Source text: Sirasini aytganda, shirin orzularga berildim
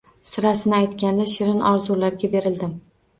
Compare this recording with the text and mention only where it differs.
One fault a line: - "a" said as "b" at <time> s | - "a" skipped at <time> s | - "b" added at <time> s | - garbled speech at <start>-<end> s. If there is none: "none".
none